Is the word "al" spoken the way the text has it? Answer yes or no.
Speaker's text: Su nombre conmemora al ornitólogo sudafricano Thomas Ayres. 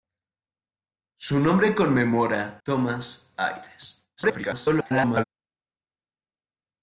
no